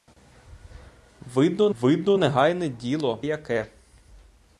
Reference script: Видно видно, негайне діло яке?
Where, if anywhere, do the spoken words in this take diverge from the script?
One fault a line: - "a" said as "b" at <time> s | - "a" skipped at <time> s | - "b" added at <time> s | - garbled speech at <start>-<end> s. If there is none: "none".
none